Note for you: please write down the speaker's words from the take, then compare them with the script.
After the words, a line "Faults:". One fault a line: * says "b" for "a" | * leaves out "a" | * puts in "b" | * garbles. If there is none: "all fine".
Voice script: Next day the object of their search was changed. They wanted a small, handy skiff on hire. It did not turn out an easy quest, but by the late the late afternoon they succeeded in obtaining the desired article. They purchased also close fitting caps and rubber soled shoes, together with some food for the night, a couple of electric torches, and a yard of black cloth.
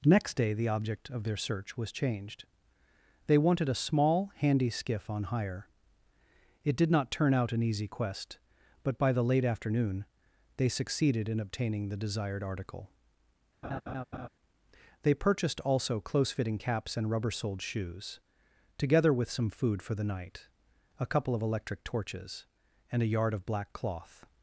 Next day the object of their search was changed. They wanted a small, handy skiff on hire. It did not turn out an easy quest, but by the late afternoon they succeeded in obtaining the desired article. They purchased also close fitting caps and rubber soled shoes, together with some food for the night, a couple of electric torches, and a yard of black cloth.
Faults:
* leaves out "the late"